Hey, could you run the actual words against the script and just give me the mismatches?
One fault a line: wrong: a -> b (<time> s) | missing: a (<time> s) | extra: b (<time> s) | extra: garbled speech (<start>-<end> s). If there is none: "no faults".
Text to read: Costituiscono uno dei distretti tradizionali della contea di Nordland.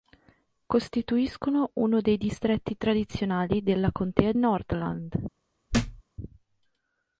missing: di (4.3 s)